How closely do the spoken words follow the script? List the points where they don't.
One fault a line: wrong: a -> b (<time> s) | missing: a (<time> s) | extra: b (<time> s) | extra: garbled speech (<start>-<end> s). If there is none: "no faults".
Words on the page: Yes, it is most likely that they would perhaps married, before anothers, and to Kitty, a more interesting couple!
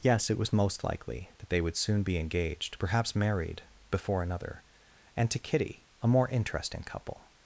wrong: is -> was (0.4 s)
extra: soon be engaged (1.8 s)
wrong: anothers -> another (4.2 s)